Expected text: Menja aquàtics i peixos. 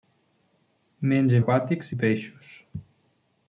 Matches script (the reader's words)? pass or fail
pass